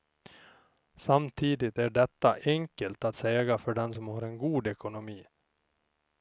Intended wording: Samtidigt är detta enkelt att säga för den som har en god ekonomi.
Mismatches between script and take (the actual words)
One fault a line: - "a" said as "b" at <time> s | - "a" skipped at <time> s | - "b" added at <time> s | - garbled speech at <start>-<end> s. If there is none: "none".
none